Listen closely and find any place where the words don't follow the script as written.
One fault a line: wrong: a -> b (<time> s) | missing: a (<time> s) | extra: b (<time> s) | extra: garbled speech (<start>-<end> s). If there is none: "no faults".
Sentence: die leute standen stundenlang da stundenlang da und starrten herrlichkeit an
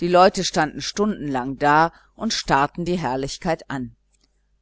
missing: stundenlang da (1.9 s)
extra: die (2.8 s)